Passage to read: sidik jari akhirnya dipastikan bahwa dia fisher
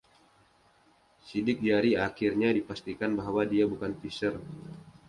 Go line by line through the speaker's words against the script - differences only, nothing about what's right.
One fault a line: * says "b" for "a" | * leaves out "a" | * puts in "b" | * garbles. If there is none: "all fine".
* puts in "bukan"